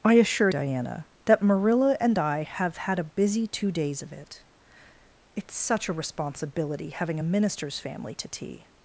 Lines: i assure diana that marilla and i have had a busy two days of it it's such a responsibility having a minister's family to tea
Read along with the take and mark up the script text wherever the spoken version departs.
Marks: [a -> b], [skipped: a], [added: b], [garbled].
i assure diana that marilla and i have had a busy two days of it it's such a responsibility having a minister's family to tea